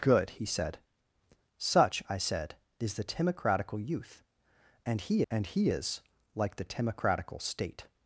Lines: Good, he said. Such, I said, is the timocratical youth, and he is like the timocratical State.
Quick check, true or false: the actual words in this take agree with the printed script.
false